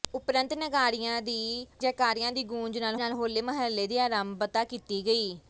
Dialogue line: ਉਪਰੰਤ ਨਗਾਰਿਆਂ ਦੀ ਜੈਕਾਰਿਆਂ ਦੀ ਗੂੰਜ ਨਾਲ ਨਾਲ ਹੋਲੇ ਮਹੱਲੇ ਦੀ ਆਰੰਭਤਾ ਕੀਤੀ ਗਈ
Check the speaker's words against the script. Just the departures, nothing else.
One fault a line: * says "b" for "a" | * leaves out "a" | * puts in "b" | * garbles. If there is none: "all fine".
all fine